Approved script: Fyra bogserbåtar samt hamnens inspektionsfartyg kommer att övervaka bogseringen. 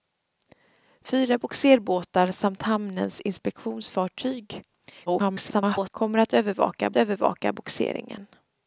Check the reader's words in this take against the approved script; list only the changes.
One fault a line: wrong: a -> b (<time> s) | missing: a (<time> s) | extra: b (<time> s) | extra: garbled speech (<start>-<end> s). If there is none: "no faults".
extra: garbled speech (5.1-5.9 s)
extra: övervaka (7.0 s)